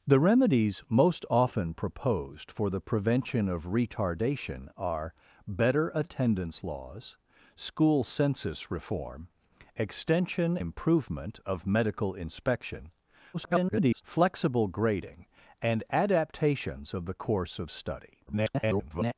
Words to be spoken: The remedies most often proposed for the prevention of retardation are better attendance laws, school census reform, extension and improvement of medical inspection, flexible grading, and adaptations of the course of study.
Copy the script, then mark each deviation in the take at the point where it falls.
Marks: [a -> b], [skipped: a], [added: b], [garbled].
The remedies most often proposed for the prevention of retardation are better attendance laws, school census reform, extension [skipped: and] improvement of medical inspection, [garbled] flexible grading, and adaptations of the course of study. [garbled]